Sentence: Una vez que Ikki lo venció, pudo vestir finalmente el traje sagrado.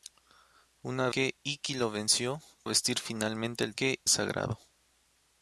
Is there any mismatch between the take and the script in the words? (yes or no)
yes